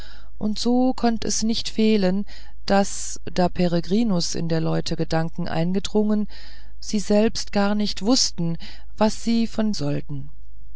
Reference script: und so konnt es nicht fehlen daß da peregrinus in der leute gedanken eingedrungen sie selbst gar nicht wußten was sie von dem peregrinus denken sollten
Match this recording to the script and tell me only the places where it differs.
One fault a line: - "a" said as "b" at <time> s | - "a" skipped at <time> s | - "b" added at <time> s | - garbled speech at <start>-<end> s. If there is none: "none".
- "dem peregrinus denken" skipped at 9.7 s